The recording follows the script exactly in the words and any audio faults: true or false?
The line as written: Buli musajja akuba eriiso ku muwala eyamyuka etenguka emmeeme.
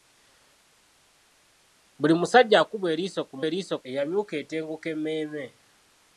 false